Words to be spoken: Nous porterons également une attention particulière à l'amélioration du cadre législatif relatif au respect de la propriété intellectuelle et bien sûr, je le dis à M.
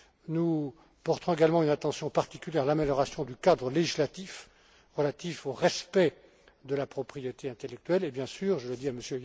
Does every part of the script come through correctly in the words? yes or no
yes